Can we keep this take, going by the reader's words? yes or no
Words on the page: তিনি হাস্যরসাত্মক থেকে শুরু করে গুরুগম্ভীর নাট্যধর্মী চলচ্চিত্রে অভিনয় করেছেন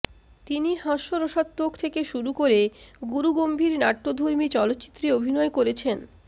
yes